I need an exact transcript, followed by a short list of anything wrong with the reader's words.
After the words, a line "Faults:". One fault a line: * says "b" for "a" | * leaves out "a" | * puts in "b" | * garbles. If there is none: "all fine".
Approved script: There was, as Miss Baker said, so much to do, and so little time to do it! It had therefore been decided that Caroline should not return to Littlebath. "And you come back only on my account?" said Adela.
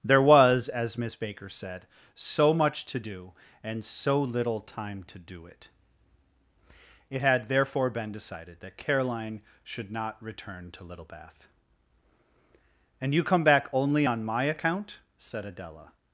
There was, as Miss Baker said, so much to do, and so little time to do it! It had therefore been decided that Caroline should not return to Littlebath. "And you come back only on my account?" said Adela.
Faults:
all fine